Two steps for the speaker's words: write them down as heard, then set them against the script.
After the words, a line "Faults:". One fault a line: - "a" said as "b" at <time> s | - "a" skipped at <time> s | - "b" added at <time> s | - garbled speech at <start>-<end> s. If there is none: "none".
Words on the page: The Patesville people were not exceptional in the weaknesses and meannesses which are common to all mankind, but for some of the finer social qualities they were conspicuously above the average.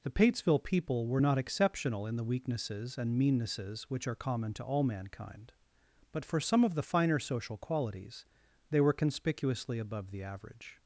The Patesville people were not exceptional in the weaknesses and meannesses which are common to all mankind, but for some of the finer social qualities they were conspicuously above the average.
Faults:
none